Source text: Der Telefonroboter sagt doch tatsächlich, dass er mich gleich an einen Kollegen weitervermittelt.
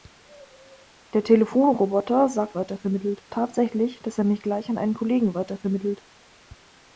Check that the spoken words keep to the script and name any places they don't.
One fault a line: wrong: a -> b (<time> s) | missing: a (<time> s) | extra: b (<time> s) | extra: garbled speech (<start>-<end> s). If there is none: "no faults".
wrong: doch -> weitervermittelt (2.5 s)